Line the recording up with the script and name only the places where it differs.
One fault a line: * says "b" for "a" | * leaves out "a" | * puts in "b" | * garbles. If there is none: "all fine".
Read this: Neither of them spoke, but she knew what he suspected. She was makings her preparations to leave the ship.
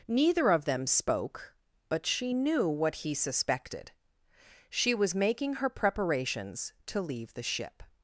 * says "making" for "makings"